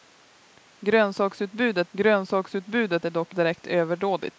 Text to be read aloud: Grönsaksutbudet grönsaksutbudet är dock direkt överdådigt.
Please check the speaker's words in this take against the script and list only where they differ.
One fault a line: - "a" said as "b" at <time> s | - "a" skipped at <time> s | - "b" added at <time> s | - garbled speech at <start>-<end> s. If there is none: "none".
none